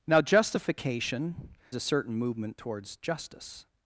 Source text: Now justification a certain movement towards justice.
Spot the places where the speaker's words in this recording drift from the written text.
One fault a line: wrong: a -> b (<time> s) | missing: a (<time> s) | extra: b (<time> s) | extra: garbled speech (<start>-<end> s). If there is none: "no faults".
no faults